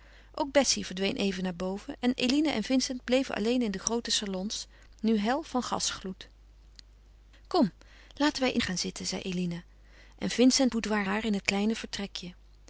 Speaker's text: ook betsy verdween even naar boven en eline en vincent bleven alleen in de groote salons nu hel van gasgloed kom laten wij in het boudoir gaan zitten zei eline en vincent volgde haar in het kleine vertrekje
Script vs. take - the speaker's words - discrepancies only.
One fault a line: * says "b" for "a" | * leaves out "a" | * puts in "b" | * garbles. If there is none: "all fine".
* leaves out "het boudoir"
* says "boudoir" for "volgde"